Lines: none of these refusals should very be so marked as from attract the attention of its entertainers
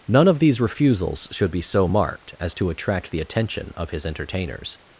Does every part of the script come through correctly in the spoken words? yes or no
no